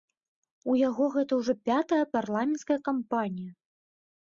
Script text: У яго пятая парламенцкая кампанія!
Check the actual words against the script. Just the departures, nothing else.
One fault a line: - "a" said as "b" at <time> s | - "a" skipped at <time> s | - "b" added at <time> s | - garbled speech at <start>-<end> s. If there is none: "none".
- "гэта ўжо" added at 1.2 s